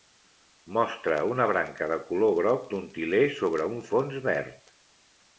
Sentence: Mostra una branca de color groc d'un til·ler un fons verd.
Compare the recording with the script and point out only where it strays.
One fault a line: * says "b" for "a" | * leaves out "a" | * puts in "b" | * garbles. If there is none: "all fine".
* puts in "sobre"